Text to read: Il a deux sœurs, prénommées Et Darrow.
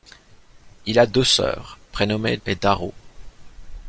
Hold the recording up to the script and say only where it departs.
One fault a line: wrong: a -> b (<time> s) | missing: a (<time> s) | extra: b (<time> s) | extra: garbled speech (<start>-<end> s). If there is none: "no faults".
no faults